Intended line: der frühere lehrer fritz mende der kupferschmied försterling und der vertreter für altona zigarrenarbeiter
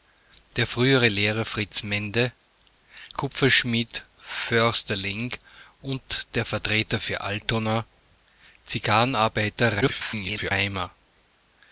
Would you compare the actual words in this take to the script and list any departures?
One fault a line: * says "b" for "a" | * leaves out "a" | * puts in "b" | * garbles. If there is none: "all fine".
* leaves out "der"
* garbles